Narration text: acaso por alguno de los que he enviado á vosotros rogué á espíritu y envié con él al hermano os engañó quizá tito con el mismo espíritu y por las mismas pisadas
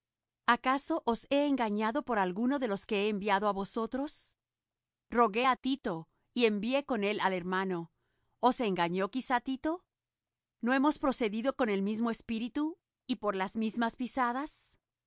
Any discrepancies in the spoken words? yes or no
yes